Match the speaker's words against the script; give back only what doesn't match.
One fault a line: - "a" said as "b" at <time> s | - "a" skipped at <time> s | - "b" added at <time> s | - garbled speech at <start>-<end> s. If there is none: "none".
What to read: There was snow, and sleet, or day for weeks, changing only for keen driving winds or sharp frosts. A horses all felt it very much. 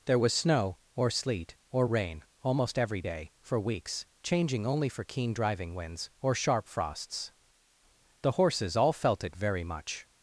- "and" said as "or" at 0.9 s
- "rain almost every" added at 1.9 s
- "A" said as "The" at 8.2 s